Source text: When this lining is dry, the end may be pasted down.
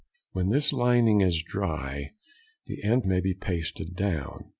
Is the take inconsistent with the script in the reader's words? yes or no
no